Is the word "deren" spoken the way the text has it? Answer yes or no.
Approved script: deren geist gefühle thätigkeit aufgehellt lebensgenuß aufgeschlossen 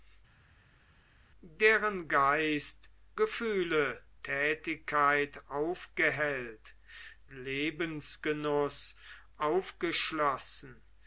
yes